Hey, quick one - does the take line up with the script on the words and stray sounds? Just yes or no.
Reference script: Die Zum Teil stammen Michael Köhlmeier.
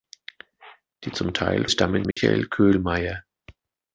no